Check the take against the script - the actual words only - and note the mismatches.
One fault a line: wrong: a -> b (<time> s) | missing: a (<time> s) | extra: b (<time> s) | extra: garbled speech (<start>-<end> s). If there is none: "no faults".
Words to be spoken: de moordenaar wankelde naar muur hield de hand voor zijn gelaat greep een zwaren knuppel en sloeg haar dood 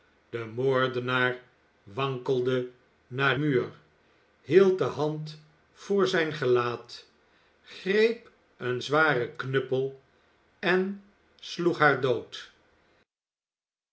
no faults